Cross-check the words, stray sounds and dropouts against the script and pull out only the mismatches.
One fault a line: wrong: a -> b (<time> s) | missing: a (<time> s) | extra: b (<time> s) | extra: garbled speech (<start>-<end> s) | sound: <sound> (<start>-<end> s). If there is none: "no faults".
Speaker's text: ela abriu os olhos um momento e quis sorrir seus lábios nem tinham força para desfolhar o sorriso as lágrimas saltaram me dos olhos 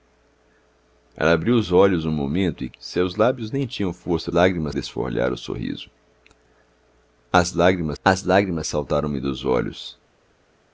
missing: quis sorrir (2.7 s)
wrong: para -> lágrimas (4.3 s)
extra: as lágrimas (8.0 s)